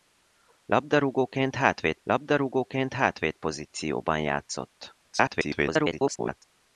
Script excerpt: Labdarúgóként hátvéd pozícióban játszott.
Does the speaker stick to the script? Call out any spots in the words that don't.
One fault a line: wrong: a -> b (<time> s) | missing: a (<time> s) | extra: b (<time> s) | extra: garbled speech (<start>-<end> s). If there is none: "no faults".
extra: labdarúgóként hátvéd (2.0 s)
extra: garbled speech (5.0-6.4 s)